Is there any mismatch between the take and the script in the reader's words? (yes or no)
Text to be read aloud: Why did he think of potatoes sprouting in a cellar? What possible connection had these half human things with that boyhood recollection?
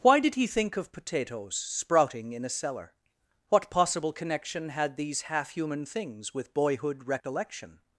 yes